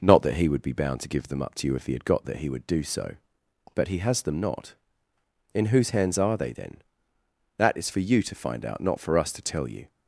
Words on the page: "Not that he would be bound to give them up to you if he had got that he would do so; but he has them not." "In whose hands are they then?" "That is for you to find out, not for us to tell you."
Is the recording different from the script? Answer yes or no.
no